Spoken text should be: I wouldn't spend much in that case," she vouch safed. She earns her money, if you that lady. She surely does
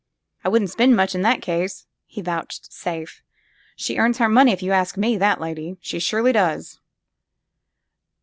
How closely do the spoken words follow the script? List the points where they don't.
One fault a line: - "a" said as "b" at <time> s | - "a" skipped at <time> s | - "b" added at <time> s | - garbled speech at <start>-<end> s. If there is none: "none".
- "she" said as "he" at 2.1 s
- "ask me" added at 4.7 s